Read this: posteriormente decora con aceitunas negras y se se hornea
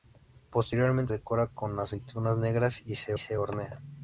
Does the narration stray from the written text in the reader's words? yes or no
no